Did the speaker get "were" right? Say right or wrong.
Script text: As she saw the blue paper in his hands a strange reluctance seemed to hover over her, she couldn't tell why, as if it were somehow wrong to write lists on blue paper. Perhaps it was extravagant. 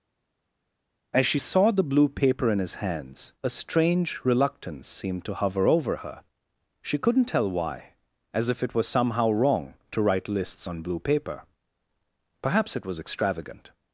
wrong